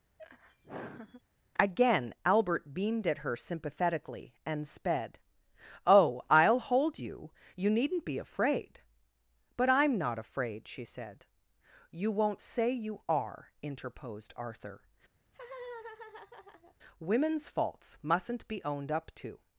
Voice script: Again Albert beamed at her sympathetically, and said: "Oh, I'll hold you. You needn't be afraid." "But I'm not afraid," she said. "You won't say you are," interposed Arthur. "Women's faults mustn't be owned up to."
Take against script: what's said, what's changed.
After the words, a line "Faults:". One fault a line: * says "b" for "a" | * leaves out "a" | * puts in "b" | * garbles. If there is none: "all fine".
Again Albert beamed at her sympathetically, and sped: "Oh, I'll hold you. You needn't be afraid." "But I'm not afraid," she said. "You won't say you are," interposed Arthur. "Women's faults mustn't be owned up to."
Faults:
* says "sped" for "said"